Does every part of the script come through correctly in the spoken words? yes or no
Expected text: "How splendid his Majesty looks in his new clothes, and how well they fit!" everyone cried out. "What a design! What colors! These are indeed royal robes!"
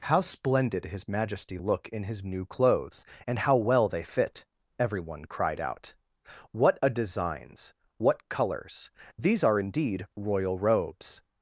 no